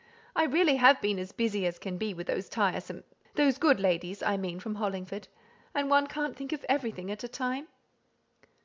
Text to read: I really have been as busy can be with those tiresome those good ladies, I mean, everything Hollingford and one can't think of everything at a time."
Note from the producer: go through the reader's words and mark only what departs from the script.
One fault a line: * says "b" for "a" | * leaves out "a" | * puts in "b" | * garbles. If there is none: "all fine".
* puts in "as"
* says "from" for "everything"